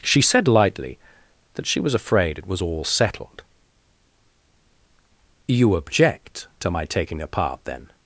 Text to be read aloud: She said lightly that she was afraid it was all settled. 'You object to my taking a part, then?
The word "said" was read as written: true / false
true